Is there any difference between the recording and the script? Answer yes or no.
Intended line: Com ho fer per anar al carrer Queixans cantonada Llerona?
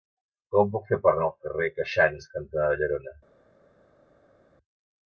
yes